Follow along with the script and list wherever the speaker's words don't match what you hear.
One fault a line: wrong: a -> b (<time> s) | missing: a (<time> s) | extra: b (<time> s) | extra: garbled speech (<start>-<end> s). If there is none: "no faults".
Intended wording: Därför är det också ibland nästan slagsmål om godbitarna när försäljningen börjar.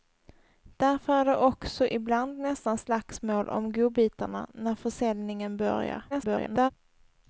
extra: garbled speech (6.1-6.7 s)